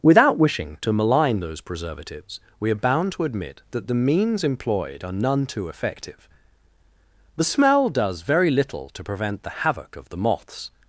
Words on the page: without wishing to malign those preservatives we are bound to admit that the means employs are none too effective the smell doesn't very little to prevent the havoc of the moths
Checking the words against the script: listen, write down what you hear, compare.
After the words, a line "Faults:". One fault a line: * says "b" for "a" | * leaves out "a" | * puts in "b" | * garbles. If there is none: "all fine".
without wishing to malign those preservatives we are bound to admit that the means employed are none too effective the smell does very little to prevent the havoc of the moths
Faults:
* says "employed" for "employs"
* says "does" for "doesn't"